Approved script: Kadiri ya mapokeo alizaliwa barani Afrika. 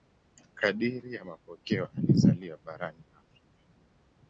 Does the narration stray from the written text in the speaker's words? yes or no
no